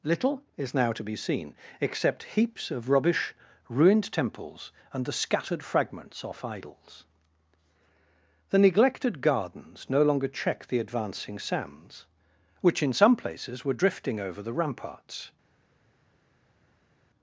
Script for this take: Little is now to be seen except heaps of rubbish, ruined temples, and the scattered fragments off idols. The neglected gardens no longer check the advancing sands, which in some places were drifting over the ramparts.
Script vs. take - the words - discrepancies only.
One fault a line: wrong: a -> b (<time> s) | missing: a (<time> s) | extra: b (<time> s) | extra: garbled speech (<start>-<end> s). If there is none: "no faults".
no faults